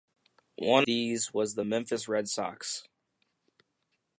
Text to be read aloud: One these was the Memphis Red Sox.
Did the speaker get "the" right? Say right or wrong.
right